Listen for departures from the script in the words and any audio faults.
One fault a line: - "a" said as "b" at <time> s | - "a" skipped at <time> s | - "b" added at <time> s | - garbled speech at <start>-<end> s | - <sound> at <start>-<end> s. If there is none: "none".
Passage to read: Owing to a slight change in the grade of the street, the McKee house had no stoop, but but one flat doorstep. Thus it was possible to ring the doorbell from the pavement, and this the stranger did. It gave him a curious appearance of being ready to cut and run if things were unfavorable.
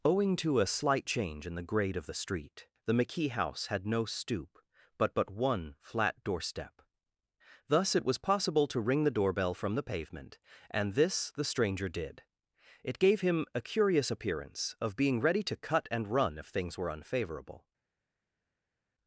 none